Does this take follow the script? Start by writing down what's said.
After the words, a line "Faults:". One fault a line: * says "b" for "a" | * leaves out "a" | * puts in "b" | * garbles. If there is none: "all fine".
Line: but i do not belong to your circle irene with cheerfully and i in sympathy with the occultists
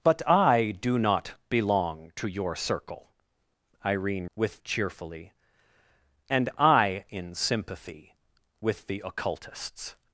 but i do not belong to your circle irene with cheerfully and i in sympathy with the occultists
Faults:
all fine